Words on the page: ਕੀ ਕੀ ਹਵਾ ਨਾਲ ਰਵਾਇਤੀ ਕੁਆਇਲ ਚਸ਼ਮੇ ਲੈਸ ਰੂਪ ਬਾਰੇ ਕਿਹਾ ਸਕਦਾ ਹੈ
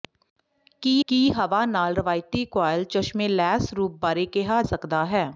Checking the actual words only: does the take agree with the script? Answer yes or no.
yes